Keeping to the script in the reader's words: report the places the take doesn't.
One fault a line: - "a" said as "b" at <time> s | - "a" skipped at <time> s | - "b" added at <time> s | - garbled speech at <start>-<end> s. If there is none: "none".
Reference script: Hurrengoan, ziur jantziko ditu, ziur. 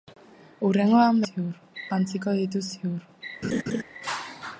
none